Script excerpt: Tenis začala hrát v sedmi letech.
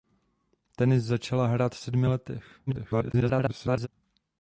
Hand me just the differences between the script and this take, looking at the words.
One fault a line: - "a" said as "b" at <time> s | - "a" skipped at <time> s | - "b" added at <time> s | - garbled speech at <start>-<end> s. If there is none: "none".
- garbled speech at 2.7-3.9 s